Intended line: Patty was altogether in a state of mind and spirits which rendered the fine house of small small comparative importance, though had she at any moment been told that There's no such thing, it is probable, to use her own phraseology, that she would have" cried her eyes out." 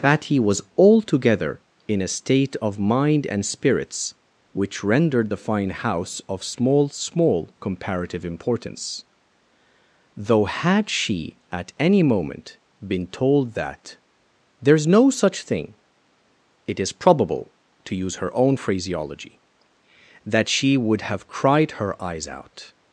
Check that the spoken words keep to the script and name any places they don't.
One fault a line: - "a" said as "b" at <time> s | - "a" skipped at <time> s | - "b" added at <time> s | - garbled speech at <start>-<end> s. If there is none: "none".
none